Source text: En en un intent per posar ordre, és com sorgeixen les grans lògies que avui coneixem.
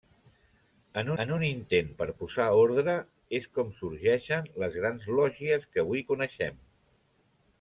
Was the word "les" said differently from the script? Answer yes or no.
no